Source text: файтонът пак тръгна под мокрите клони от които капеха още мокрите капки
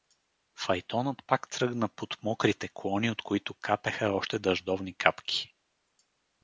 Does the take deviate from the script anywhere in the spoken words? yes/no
yes